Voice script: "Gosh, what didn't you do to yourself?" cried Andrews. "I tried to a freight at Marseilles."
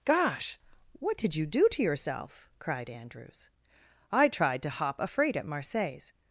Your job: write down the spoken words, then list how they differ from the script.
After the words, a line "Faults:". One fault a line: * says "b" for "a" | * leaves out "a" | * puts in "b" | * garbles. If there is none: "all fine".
"Gosh, what did you do to yourself?" cried Andrews. "I tried to hop a freight at Marseilles."
Faults:
* says "did" for "didn't"
* puts in "hop"